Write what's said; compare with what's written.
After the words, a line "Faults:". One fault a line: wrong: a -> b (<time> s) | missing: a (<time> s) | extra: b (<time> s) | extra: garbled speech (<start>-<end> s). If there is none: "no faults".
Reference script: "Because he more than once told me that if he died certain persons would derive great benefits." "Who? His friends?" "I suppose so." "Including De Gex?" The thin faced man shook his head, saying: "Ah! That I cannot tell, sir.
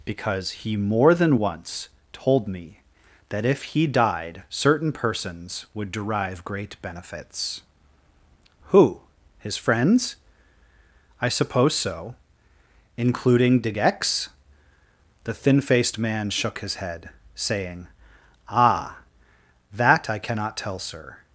"Because he more than once told me that if he died certain persons would derive great benefits." "Who? His friends?" "I suppose so." "Including De Gex?" The thin faced man shook his head, saying: "Ah! That I cannot tell, sir.
Faults:
no faults